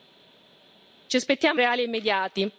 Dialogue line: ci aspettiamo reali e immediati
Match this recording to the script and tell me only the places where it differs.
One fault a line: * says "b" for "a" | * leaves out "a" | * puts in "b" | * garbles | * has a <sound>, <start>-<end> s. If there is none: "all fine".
all fine